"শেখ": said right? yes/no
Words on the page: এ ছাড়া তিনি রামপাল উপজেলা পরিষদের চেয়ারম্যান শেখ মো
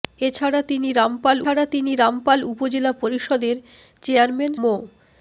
no